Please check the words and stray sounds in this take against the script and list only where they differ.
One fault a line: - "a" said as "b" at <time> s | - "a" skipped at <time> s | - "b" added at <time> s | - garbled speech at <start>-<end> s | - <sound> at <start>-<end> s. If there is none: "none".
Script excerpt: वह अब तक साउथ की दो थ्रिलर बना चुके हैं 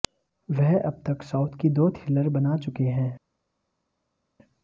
none